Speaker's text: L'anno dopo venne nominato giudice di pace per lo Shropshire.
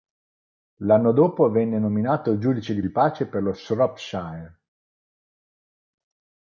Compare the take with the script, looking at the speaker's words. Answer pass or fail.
fail